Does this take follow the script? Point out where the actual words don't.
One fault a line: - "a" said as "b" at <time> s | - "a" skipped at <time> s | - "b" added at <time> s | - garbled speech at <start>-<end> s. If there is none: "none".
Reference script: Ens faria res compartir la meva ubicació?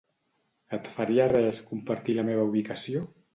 - "Ens" said as "Et" at 0.8 s